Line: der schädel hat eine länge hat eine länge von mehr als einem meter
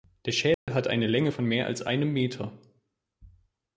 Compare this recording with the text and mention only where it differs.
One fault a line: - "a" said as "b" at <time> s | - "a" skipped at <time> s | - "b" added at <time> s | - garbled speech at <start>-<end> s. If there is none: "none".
- "hat eine länge" skipped at 1.3 s